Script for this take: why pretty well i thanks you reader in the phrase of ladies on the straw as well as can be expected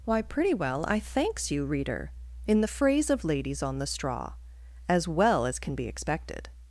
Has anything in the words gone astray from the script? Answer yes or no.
no